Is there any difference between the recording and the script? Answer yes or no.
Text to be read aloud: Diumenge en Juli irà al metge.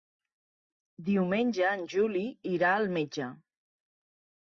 no